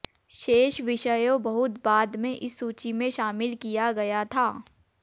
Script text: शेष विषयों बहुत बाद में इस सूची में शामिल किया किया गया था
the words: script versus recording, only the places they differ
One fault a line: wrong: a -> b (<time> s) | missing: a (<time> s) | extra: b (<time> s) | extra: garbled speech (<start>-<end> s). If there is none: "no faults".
missing: किया (3.9 s)